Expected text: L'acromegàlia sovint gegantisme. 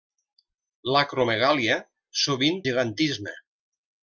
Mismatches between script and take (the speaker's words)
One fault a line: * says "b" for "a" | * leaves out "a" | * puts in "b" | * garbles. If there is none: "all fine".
all fine